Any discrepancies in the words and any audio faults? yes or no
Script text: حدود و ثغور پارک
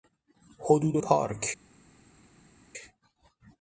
yes